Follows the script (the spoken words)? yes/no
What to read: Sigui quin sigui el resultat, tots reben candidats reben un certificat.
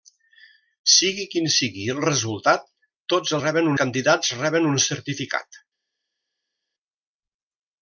yes